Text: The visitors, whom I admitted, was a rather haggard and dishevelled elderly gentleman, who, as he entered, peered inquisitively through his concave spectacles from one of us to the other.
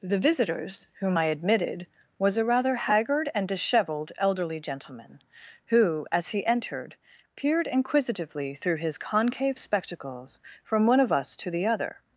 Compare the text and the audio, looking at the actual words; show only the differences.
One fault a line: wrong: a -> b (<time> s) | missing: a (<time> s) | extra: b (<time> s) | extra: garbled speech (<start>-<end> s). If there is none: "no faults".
no faults